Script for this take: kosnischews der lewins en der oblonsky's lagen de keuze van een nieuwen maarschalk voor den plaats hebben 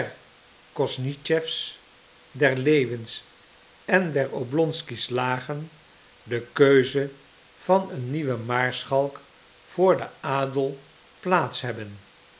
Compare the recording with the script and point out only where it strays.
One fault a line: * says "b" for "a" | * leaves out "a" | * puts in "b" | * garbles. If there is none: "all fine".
* puts in "adel"